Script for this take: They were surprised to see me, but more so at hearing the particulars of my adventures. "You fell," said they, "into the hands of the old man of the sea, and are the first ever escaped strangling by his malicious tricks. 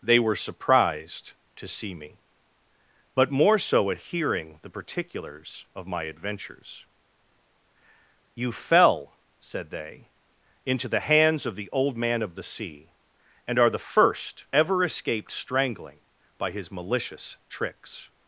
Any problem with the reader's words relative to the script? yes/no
no